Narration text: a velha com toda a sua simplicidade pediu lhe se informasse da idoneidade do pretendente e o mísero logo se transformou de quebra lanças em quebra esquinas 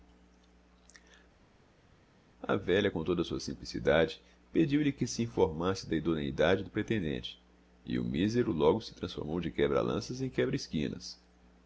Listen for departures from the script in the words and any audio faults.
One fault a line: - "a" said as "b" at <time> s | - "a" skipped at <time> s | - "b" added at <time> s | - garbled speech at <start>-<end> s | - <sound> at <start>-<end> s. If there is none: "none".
- "que" added at 4.9 s